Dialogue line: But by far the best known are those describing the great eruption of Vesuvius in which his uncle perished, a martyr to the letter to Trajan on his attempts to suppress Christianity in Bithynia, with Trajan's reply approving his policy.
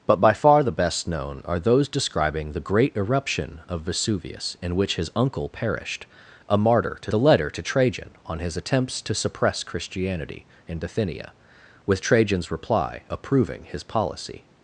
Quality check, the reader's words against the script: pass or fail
pass